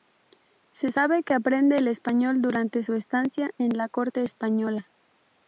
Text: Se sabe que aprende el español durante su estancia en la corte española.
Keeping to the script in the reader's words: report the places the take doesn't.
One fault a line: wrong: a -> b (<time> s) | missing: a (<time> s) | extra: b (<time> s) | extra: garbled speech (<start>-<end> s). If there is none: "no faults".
no faults